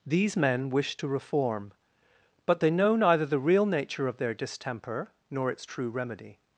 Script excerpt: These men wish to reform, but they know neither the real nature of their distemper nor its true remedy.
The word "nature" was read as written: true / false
true